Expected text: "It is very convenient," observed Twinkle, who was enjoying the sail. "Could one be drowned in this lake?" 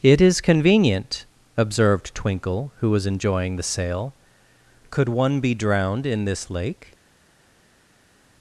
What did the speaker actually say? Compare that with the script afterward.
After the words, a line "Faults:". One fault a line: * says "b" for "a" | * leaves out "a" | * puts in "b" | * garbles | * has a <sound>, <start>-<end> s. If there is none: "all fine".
"It is convenient," observed Twinkle, who was enjoying the sail. "Could one be drowned in this lake?"
Faults:
* leaves out "very"